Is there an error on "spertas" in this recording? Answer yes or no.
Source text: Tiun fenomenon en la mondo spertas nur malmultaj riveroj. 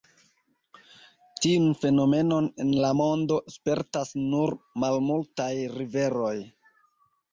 no